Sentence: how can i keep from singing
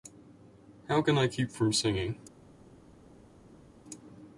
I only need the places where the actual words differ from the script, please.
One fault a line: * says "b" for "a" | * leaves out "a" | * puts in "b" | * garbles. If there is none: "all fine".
all fine